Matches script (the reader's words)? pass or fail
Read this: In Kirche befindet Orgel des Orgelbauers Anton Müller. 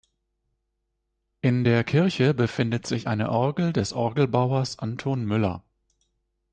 fail